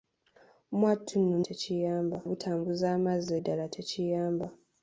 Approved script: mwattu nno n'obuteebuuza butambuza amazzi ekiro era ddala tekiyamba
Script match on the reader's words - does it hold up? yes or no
no